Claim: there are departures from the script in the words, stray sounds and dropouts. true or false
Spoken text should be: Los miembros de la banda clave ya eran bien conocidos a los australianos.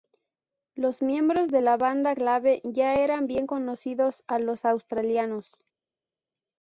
false